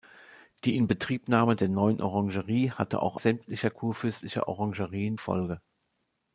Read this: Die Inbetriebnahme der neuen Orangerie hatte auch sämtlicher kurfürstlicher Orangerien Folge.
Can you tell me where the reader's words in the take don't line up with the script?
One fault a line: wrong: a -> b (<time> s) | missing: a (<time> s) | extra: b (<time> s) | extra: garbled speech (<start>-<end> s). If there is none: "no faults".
no faults